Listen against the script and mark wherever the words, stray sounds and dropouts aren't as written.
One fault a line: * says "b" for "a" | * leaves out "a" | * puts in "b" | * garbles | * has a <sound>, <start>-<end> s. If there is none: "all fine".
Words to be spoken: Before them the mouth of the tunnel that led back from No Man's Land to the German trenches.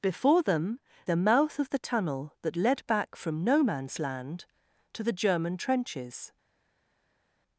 all fine